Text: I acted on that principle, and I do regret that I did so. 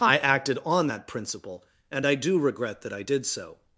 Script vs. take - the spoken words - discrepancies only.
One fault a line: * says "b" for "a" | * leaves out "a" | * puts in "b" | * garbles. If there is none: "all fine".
all fine